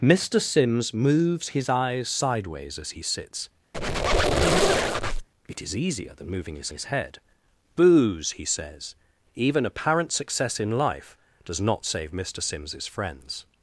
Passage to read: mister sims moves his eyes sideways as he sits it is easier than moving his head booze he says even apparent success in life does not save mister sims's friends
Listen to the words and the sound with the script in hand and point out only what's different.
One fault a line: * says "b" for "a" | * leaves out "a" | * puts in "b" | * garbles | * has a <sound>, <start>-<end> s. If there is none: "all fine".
* has a squeak, 3.7-5.3 s
* puts in "his"